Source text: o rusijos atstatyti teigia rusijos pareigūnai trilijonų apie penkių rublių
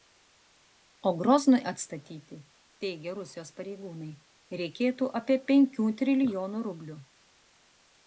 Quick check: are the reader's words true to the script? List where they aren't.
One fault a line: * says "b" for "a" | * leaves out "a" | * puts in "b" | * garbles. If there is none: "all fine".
* says "groznui" for "rusijos"
* says "reikėtų" for "trilijonų"
* puts in "trilijonų"